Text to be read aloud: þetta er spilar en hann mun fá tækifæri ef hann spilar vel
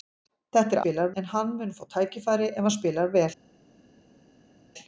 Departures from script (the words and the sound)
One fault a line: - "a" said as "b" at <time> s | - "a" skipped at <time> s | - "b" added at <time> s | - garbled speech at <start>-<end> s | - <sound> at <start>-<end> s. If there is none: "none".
none